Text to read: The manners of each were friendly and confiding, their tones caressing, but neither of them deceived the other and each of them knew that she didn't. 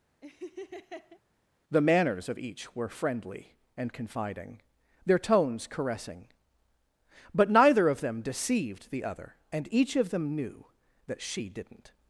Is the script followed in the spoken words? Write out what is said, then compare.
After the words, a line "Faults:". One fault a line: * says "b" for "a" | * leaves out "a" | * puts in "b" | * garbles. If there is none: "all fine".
The manners of each were friendly and confiding, their tones caressing, but neither of them deceived the other and each of them knew that she didn't.
Faults:
all fine